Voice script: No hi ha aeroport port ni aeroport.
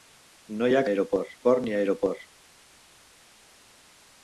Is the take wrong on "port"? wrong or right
right